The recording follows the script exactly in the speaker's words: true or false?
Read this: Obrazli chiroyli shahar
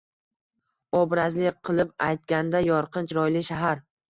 false